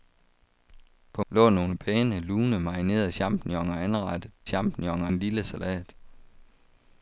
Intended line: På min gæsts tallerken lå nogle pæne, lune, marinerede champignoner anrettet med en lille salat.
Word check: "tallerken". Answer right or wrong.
wrong